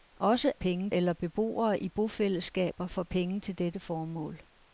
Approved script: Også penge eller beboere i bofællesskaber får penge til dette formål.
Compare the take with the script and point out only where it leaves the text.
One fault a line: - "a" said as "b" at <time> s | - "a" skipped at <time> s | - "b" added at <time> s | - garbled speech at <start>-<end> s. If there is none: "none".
none